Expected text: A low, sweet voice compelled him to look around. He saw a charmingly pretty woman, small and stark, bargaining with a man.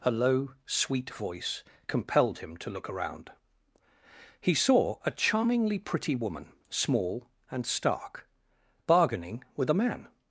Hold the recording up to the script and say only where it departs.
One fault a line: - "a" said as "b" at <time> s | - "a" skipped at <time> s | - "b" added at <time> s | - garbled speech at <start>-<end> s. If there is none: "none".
none